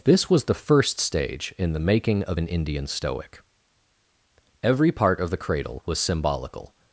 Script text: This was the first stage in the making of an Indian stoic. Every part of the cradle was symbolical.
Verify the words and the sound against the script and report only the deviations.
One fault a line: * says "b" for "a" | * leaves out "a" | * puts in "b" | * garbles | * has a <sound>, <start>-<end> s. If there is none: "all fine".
all fine